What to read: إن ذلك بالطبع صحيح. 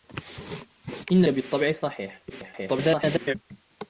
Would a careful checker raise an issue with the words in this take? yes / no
yes